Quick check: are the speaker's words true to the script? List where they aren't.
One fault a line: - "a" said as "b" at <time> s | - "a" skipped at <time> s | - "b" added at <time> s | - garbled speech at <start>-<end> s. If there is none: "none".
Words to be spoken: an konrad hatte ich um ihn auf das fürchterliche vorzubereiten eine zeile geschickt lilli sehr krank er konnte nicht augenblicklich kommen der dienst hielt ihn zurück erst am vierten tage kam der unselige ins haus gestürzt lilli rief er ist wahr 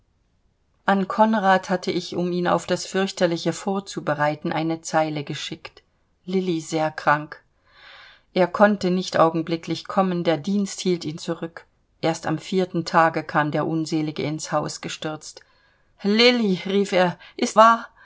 none